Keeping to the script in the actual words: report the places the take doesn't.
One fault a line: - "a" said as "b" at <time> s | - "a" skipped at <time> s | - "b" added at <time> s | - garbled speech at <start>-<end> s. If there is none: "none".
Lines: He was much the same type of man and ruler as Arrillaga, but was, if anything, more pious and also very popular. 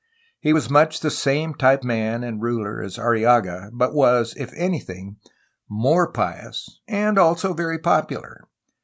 - "of" skipped at 1.8 s